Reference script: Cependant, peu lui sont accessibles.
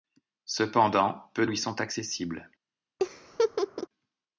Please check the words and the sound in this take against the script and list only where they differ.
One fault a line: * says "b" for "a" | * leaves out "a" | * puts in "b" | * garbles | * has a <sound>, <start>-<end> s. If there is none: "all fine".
* has a laugh, 3.0-3.9 s